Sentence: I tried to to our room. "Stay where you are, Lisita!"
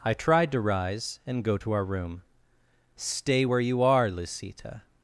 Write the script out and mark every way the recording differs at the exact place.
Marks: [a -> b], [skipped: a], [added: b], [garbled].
I tried to [added: rise and go] to our room. "Stay where you are, Lisita!"